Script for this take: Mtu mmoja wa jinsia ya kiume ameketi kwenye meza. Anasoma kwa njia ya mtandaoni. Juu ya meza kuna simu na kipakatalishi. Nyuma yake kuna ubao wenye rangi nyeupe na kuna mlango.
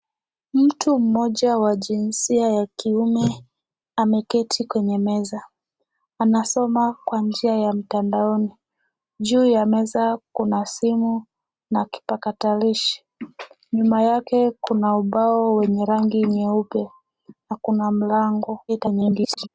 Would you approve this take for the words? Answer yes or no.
no